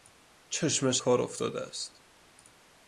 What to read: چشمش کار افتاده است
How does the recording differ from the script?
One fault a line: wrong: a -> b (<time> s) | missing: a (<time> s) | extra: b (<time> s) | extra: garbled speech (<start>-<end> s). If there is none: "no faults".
no faults